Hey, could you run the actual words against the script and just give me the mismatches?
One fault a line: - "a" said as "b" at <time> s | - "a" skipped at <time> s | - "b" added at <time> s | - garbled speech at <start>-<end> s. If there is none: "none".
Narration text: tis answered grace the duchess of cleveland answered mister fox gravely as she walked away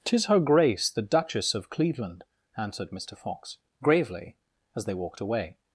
- "answered" said as "her" at 0.2 s
- "she" said as "they" at 4.8 s